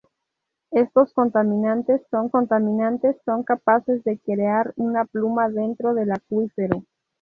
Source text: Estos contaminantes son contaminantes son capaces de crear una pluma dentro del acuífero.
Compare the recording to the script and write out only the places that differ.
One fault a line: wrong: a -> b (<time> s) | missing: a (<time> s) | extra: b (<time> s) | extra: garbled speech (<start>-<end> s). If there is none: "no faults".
no faults